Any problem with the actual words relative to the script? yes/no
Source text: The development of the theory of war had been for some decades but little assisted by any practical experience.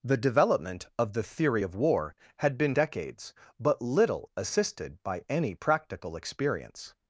yes